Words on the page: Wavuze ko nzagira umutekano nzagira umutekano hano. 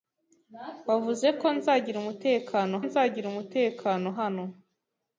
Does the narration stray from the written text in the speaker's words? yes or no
no